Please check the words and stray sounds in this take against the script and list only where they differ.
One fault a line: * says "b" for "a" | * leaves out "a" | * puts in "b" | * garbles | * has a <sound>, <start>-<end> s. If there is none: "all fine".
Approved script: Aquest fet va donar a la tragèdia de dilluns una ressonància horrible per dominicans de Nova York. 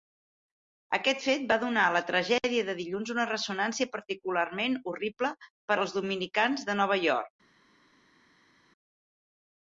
* puts in "particularment"
* puts in "als"